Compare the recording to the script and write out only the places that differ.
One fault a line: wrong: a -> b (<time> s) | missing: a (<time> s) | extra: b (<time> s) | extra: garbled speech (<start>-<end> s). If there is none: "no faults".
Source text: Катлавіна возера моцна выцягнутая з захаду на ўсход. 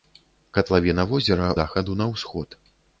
missing: моцна выцягнутая з (1.5 s)